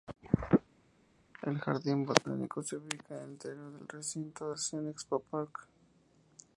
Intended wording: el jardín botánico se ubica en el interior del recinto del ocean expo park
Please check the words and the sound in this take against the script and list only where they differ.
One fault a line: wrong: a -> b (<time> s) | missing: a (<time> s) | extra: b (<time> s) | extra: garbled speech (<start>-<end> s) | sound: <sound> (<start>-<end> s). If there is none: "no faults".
missing: del (4.5 s)